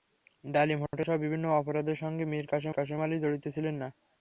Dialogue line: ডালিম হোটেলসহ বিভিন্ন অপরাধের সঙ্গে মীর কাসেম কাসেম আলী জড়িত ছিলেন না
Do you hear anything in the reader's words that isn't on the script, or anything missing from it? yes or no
no